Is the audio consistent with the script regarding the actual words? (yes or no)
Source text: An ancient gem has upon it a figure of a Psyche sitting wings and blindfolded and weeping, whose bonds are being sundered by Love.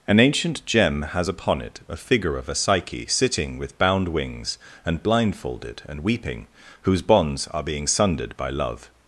no